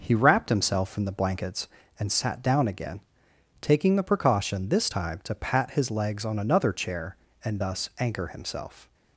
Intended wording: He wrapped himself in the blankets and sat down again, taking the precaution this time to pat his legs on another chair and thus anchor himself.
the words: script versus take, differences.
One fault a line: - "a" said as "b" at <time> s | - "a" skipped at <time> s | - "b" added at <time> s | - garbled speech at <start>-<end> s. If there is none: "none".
none